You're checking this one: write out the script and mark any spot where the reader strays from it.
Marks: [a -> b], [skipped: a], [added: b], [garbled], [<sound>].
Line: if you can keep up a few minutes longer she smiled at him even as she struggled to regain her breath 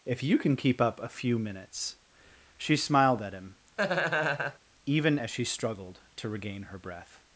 if you can keep up a few minutes [skipped: longer] she smiled at him [laugh] even as she struggled to regain her breath